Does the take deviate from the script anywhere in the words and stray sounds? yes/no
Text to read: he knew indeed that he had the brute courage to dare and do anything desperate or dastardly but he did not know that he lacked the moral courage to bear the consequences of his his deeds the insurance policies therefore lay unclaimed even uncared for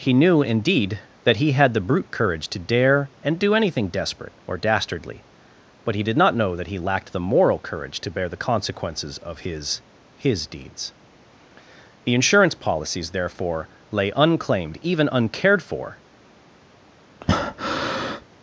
yes